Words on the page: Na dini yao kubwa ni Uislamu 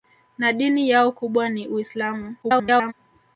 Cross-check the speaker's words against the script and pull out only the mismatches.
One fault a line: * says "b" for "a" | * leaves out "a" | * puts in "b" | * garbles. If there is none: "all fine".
* garbles